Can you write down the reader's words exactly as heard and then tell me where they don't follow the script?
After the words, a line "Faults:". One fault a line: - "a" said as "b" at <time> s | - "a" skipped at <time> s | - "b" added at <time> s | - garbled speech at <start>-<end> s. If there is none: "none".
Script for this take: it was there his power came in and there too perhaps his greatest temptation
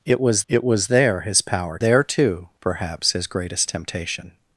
it was it was there his power there too perhaps his greatest temptation
Faults:
- "it was" added at 0.5 s
- "came in and" skipped at 1.8 s